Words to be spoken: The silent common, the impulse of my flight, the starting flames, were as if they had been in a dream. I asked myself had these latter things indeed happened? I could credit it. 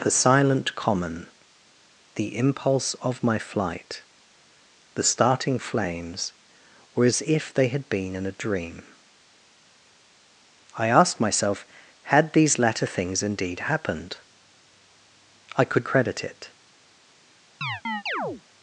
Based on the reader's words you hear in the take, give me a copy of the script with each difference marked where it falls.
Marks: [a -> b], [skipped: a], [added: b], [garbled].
The silent common, the impulse of my flight, the starting flames, were as if they had been in a dream. I asked myself had these latter things indeed happened? I could credit it.